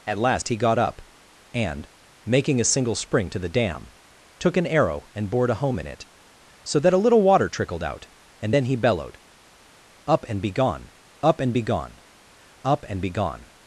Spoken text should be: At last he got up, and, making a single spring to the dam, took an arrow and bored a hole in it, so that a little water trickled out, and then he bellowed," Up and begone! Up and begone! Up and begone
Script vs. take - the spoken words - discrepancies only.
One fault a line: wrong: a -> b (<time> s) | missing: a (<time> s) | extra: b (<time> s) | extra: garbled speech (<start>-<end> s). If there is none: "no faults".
wrong: hole -> home (5.5 s)